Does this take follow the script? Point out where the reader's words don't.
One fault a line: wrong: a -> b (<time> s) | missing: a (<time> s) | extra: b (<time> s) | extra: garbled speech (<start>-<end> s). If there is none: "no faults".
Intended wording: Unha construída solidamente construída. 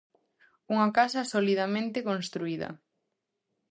wrong: construída -> casa (1.0 s)